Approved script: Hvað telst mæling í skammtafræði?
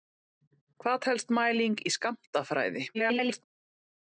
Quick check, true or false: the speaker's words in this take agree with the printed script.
false